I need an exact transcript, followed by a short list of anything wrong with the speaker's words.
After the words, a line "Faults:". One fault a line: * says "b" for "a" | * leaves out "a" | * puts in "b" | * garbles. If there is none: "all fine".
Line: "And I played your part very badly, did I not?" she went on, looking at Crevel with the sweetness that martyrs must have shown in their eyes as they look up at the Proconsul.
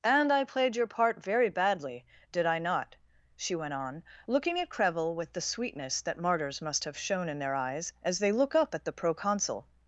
"And I played your part very badly, did I not?" she went on, looking at Crevel with the sweetness that martyrs must have shown in their eyes as they look up at the Proconsul.
Faults:
all fine